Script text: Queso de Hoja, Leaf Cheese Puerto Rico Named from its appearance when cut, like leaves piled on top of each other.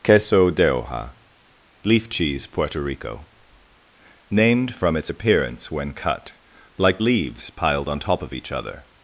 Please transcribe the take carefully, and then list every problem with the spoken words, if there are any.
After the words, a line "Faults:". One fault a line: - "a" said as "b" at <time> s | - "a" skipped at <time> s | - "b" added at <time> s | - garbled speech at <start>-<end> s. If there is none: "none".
Queso de Hoja, Leaf Cheese Puerto Rico Named from its appearance when cut, like leaves piled on top of each other.
Faults:
none